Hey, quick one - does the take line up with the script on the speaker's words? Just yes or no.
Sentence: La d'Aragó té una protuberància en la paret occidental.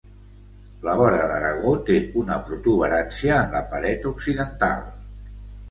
no